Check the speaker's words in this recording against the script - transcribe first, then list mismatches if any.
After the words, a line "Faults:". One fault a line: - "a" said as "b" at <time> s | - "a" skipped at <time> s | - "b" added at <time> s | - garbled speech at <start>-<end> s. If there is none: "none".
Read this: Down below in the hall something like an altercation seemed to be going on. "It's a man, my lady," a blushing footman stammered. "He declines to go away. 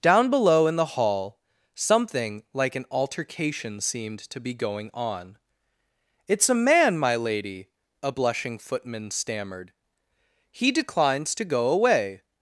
Down below in the hall something like an altercation seemed to be going on. "It's a man, my lady," a blushing footman stammered. "He declines to go away.
Faults:
none